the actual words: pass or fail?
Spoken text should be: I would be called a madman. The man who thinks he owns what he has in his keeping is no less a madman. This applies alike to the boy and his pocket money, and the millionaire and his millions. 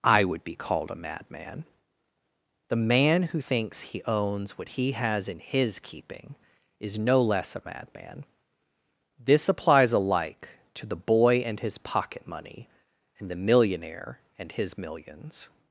pass